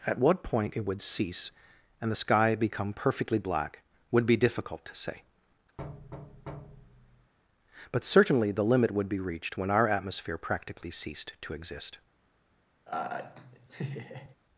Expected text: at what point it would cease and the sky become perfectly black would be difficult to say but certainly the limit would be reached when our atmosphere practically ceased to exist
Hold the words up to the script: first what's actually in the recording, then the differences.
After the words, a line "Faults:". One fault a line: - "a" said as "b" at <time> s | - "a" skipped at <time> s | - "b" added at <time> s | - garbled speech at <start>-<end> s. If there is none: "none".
at what point it would cease and the sky become perfectly black would be difficult to say but certainly the limit would be reached when our atmosphere practically ceased to exist
Faults:
none